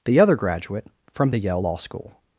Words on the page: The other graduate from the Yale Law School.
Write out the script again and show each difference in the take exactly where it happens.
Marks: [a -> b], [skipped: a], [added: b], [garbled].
The other graduate from the Yale Law School.